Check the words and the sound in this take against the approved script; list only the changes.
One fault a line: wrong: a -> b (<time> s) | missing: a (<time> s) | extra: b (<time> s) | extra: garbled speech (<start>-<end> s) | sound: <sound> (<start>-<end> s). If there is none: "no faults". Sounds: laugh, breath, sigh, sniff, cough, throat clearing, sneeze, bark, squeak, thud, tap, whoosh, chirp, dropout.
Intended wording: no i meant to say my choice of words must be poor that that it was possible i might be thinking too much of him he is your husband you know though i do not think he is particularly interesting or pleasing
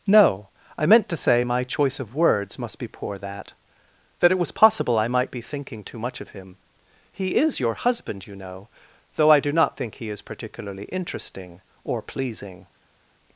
no faults